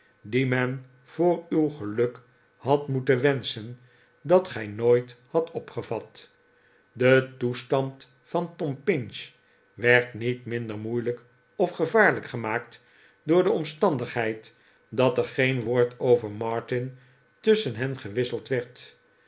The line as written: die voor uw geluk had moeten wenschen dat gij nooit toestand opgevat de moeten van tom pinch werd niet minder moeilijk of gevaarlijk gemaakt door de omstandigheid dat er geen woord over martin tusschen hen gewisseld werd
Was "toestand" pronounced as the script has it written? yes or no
no